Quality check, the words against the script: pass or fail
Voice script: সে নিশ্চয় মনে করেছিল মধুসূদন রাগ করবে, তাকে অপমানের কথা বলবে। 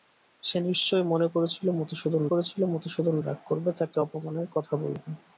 fail